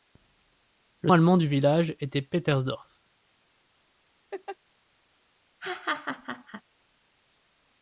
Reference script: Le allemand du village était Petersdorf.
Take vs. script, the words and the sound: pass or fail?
fail